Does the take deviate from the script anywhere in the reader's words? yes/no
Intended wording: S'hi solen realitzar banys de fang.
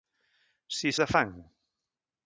yes